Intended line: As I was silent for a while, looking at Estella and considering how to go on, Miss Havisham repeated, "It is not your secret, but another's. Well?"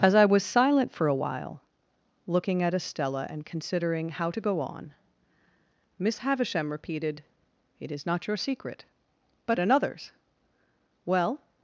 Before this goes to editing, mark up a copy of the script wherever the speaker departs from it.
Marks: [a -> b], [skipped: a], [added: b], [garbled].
As I was silent for a while, looking at Estella and considering how to go on, Miss Havisham repeated, "It is not your secret, but another's. Well?"